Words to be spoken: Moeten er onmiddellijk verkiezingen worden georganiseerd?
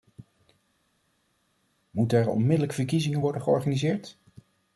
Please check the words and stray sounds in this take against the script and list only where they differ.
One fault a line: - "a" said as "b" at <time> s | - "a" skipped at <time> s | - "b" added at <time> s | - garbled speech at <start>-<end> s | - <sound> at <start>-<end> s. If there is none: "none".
none